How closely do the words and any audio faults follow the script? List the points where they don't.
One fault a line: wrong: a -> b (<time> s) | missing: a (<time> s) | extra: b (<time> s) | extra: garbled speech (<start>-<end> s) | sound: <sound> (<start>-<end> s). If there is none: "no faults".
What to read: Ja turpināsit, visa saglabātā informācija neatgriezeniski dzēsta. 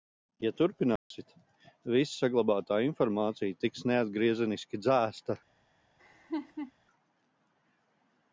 sound: dropout (1.0-1.1 s)
extra: tiks (3.6 s)
sound: laugh (6.0-6.7 s)